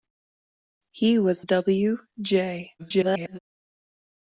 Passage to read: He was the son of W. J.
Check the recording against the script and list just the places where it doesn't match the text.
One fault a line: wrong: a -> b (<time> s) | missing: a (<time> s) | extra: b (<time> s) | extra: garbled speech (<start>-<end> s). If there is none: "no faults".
missing: the son of (1.4 s)
extra: garbled speech (2.8-3.4 s)